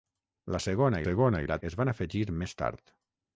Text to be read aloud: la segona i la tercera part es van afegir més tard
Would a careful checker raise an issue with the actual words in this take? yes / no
yes